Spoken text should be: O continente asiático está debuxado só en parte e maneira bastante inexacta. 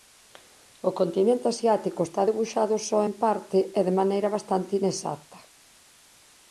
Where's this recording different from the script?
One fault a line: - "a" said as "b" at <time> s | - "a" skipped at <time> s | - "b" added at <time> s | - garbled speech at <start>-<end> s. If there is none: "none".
- "de" added at 3.9 s